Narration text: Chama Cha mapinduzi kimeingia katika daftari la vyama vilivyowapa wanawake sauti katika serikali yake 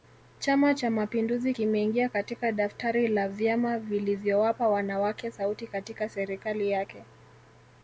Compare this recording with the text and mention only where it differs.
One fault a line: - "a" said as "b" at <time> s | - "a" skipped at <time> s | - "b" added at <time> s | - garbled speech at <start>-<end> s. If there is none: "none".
none